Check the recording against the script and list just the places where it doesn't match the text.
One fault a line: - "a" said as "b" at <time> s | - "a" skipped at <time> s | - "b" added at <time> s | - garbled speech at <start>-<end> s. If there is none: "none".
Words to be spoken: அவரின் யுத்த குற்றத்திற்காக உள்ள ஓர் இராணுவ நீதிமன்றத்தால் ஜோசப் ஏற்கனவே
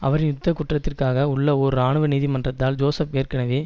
none